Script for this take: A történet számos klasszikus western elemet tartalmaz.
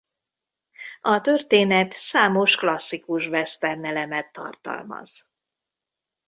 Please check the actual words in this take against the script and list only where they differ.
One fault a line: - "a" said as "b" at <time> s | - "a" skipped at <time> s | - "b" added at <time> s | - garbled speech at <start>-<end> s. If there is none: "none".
none